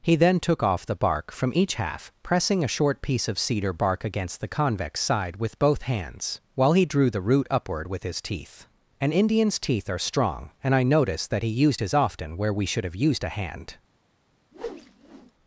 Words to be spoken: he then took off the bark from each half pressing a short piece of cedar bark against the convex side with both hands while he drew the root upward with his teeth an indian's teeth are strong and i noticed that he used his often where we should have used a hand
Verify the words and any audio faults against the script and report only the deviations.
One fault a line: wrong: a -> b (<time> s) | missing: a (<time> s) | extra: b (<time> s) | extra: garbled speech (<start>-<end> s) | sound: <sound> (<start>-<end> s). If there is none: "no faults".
sound: whoosh (14.5-15.3 s)